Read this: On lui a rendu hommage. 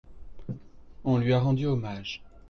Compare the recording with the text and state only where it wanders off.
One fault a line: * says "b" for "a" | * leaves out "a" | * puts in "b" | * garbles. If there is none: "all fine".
all fine